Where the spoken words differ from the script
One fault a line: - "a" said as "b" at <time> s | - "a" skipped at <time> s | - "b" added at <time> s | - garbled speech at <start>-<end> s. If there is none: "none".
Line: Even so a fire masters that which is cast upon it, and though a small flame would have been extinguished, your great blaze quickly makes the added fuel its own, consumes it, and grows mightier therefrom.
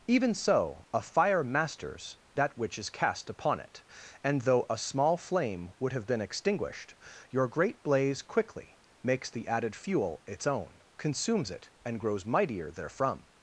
none